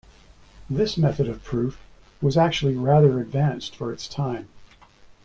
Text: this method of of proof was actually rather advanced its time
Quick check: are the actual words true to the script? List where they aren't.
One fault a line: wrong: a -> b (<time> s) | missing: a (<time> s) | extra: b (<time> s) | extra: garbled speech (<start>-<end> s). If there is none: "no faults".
missing: of (1.4 s)
extra: for (3.7 s)